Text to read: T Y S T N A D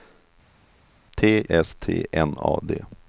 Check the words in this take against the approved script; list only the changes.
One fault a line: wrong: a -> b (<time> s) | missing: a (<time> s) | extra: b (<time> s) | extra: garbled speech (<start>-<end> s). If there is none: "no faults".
missing: Y (1.4 s)